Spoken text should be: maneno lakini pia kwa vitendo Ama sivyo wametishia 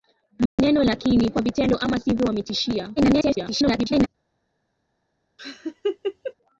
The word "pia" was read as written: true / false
false